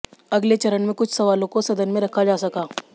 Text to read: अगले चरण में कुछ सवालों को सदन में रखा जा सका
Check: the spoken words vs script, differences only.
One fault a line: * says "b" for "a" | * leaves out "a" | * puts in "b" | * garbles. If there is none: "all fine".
all fine